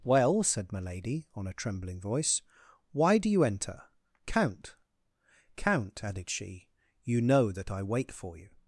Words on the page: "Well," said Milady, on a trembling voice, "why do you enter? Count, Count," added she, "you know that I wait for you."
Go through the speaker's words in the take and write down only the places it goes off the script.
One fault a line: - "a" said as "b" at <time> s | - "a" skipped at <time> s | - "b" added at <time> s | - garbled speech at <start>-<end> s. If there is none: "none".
none